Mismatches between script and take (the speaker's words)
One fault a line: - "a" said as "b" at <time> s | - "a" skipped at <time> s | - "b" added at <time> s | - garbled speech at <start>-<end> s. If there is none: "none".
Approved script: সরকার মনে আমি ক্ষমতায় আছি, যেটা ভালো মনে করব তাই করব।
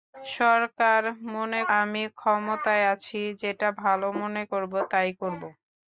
none